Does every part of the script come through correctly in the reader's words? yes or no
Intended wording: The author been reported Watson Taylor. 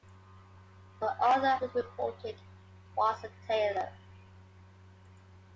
yes